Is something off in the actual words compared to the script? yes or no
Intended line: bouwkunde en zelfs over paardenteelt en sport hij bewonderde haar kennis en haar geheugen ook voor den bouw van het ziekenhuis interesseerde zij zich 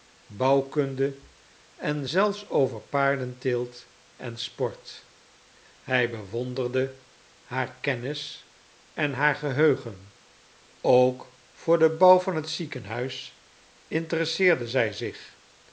no